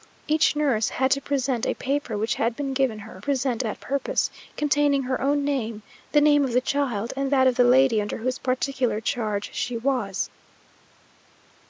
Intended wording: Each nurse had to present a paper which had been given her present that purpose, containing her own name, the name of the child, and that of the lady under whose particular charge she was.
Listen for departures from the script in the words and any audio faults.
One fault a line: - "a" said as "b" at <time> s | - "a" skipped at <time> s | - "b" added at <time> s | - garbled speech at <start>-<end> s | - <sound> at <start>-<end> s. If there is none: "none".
none